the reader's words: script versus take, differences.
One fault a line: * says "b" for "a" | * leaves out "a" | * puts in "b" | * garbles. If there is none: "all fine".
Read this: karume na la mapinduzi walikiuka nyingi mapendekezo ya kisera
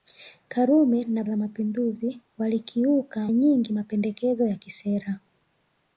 all fine